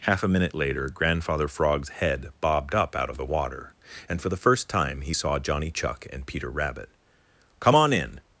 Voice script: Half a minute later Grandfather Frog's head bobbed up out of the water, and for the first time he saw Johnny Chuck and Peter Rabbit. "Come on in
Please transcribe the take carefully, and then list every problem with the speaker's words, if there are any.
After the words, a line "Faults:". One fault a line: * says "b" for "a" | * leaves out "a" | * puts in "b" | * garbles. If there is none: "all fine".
Half a minute later Grandfather Frog's head bobbed up out of the water, and for the first time he saw Johnny Chuck and Peter Rabbit. "Come on in
Faults:
all fine